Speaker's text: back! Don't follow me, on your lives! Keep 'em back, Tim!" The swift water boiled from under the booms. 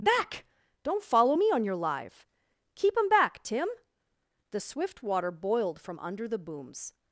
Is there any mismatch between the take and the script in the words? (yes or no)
yes